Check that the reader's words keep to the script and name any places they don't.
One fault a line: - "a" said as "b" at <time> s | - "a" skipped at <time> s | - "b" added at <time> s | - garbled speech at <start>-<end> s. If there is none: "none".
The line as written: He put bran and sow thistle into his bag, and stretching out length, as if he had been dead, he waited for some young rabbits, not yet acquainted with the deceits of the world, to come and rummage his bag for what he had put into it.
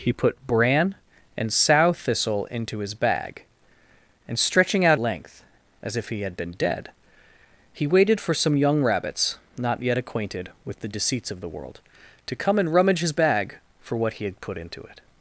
none